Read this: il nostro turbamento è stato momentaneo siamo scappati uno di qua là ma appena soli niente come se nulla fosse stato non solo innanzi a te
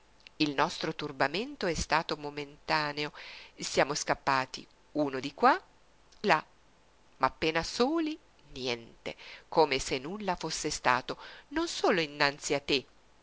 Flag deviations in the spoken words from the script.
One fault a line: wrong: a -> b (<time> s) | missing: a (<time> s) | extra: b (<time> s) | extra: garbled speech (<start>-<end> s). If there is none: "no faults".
no faults